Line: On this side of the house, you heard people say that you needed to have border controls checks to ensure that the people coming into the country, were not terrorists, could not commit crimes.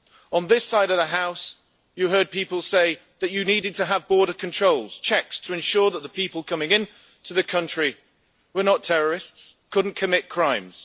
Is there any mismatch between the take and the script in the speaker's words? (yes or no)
no